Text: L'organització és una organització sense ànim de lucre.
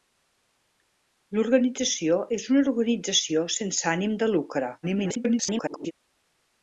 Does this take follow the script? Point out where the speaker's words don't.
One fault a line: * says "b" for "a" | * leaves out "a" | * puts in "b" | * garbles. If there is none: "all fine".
* garbles